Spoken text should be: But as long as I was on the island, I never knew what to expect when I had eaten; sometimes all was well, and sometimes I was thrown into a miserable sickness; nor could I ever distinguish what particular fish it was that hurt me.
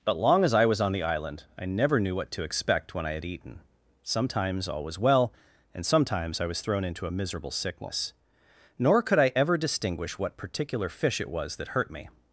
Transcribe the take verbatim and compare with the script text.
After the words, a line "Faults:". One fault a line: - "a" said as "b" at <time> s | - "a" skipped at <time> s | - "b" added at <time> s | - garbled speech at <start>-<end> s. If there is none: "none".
But long as I was on the island, I never knew what to expect when I had eaten; sometimes all was well, and sometimes I was thrown into a miserable sickness; nor could I ever distinguish what particular fish it was that hurt me.
Faults:
- "as" skipped at 0.2 s